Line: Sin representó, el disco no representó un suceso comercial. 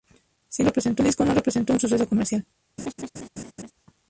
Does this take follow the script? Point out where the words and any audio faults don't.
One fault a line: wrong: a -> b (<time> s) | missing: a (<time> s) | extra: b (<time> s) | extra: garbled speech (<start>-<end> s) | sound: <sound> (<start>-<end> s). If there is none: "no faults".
sound: laugh (2.8-3.7 s)